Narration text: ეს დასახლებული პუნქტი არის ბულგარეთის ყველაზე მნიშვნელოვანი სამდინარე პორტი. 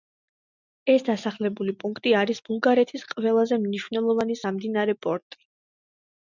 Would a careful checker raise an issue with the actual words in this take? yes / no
no